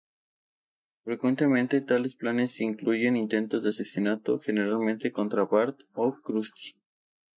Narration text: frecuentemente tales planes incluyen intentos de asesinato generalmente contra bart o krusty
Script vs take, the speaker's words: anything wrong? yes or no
no